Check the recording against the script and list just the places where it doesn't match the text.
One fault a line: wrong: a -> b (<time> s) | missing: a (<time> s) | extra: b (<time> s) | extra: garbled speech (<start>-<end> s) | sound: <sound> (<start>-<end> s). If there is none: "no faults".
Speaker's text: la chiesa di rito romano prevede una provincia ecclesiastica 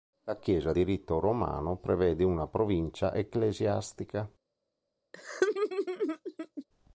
sound: laugh (5.1-6.6 s)